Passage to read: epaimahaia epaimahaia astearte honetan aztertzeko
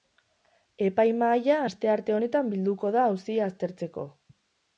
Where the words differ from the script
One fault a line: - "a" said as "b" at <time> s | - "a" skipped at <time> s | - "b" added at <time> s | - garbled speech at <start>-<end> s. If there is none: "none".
- "epaimahaia" skipped at 1.6 s
- "bilduko da auzia" added at 2.6 s